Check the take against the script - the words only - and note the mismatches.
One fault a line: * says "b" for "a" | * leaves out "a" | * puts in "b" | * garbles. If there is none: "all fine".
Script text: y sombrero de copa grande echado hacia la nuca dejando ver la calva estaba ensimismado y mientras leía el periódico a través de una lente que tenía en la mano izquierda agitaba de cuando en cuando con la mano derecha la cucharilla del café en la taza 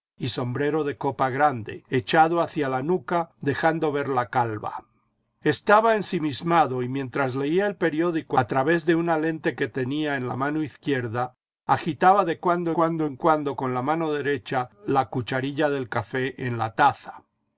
* puts in "cuando"